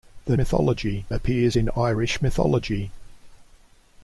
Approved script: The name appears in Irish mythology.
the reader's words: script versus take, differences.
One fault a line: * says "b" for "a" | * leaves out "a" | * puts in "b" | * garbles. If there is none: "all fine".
* says "mythology" for "name"